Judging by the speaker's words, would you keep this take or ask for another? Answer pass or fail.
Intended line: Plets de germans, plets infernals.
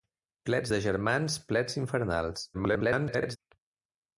fail